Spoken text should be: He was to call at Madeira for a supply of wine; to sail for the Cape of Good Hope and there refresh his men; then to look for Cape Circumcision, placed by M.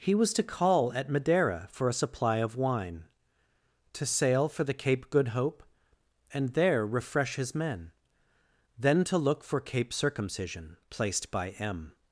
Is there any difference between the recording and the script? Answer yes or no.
yes